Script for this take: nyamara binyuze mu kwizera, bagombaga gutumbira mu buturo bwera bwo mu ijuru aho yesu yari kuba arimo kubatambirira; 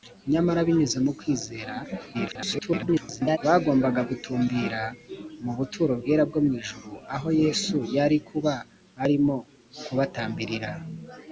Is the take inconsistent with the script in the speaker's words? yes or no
yes